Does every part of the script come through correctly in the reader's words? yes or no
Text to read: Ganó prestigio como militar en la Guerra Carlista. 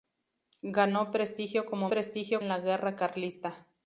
no